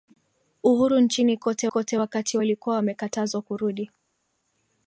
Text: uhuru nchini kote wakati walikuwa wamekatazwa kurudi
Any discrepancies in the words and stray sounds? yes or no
yes